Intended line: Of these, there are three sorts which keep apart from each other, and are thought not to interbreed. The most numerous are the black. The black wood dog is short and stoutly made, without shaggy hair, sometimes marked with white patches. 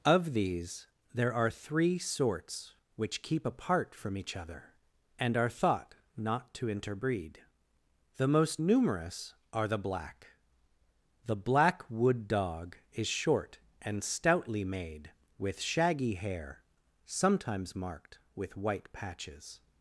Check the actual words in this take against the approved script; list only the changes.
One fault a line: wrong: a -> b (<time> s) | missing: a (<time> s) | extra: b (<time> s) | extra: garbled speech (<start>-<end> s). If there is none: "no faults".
wrong: without -> with (15.4 s)